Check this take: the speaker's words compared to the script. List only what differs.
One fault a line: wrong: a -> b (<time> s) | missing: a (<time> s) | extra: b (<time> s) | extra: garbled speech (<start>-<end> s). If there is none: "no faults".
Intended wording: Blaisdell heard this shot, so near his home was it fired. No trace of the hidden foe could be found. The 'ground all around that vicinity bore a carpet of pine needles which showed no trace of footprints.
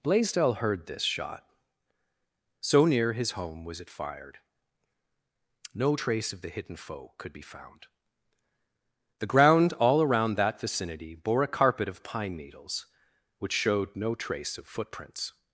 no faults